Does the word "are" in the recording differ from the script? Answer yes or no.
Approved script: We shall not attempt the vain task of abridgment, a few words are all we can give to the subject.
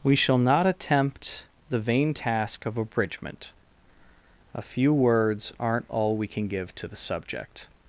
yes